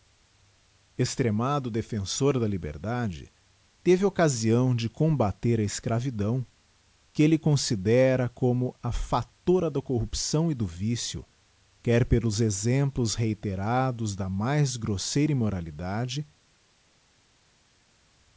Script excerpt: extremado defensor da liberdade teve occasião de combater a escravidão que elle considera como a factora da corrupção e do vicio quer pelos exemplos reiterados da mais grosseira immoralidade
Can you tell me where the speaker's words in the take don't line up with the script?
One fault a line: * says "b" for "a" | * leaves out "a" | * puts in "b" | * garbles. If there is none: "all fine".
all fine